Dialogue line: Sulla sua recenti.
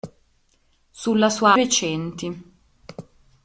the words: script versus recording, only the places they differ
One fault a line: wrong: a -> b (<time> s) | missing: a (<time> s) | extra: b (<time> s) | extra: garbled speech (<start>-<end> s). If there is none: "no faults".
no faults